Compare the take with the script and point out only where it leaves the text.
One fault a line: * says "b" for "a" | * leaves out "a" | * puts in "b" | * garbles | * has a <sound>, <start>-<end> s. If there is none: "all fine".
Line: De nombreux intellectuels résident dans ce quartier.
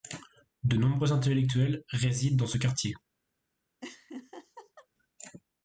* has a laugh, 3.8-4.9 s